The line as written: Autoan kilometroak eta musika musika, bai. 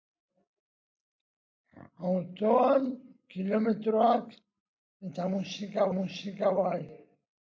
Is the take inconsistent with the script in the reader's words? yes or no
no